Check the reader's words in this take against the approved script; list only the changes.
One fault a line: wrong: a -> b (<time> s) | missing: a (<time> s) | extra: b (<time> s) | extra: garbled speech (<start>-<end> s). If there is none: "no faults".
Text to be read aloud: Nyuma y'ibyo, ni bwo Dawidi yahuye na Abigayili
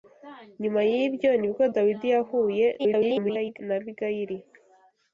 extra: garbled speech (2.8-3.6 s)